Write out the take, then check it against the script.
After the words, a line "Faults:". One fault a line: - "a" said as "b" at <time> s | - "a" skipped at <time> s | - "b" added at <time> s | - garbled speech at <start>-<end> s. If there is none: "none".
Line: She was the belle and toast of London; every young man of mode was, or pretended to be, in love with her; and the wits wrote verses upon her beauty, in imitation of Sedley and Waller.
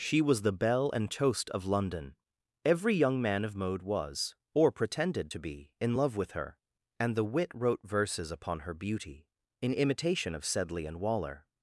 She was the belle and toast of London; every young man of mode was, or pretended to be, in love with her; and the wit wrote verses upon her beauty, in imitation of Sedley and Waller.
Faults:
- "wits" said as "wit" at 7.2 s